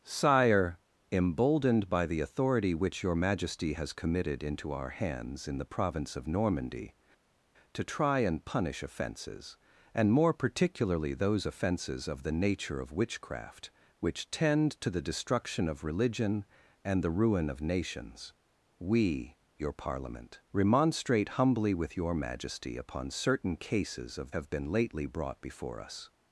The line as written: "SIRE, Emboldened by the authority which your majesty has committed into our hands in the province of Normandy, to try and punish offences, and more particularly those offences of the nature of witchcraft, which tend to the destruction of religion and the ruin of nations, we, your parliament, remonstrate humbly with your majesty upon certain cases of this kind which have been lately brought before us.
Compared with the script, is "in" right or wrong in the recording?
right